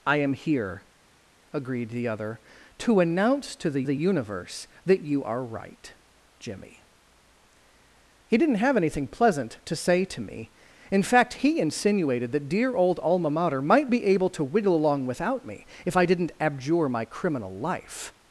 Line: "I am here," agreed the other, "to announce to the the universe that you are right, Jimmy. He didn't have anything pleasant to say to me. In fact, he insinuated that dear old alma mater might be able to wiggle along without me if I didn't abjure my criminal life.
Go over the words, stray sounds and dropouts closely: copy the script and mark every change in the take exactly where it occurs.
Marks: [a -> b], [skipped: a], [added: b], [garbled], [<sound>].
"I am here," agreed the other, "to announce to the the universe that you are right, Jimmy. He didn't have anything pleasant to say to me. In fact, he insinuated that dear old alma mater might be able to wiggle along without me if I didn't abjure my criminal life.